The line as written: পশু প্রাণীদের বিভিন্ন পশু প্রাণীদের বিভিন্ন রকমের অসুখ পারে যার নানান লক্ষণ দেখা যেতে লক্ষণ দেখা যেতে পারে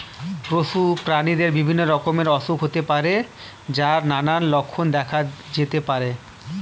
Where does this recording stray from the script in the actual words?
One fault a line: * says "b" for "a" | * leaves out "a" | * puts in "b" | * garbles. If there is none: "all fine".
* leaves out "পশু প্রাণীদের বিভিন্ন"
* puts in "হতে"
* leaves out "লক্ষণ দেখা যেতে"